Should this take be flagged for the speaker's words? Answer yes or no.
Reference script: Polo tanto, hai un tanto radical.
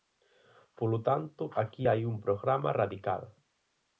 yes